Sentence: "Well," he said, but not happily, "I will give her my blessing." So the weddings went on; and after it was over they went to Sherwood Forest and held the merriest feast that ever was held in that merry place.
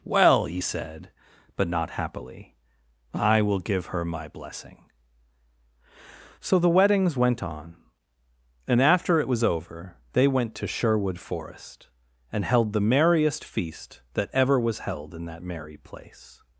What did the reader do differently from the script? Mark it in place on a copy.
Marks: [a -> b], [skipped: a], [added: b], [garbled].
"Well," he said, but not happily, "I will give her my blessing." So the weddings went on; and after it was over they went to Sherwood Forest and held the merriest feast that ever was held in that merry place.